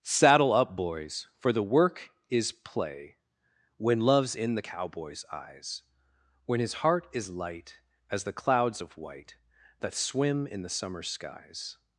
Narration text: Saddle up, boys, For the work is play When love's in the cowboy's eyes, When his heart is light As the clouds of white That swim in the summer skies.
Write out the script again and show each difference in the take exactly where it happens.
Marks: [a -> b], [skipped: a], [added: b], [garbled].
Saddle up, boys, For the work is play When love's in the cowboy's eyes, When his heart is light As the clouds of white That swim in the summer skies.